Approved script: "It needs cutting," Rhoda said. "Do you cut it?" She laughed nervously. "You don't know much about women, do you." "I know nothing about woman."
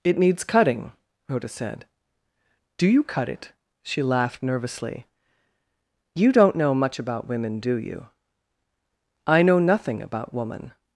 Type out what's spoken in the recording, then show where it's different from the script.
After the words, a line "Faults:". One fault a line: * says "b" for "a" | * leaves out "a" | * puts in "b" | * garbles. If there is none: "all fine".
"It needs cutting," Rhoda said. "Do you cut it?" She laughed nervously. "You don't know much about women, do you." "I know nothing about woman."
Faults:
all fine